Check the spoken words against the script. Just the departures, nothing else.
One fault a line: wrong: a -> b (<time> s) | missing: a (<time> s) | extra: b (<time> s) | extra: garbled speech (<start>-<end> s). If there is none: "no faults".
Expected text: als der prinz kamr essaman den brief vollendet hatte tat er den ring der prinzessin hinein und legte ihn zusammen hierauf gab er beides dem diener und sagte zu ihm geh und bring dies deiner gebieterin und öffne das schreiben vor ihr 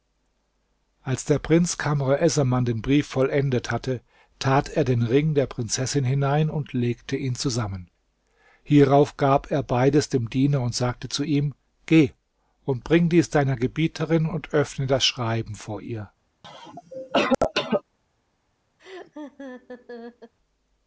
no faults